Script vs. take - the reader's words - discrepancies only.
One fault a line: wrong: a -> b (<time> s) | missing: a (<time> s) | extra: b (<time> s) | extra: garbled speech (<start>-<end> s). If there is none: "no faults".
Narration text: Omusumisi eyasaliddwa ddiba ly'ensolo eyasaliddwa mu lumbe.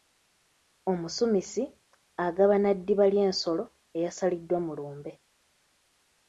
wrong: eyasaliddwa -> agabana (2.2 s)